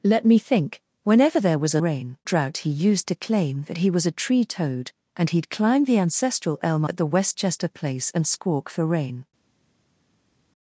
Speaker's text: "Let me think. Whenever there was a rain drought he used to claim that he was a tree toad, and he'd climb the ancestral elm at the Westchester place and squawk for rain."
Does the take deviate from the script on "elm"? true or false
false